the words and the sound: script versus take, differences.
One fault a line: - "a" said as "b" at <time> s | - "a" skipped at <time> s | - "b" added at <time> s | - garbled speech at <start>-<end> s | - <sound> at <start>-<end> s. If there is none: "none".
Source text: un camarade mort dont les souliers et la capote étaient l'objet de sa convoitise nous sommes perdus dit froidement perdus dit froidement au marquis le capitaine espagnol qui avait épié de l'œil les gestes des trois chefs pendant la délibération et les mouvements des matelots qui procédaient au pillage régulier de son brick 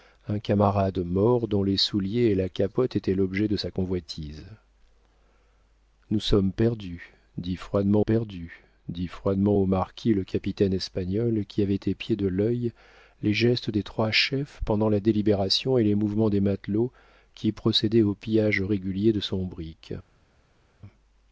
none